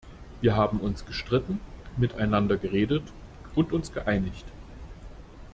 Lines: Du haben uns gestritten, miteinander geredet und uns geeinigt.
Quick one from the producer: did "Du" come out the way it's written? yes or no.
no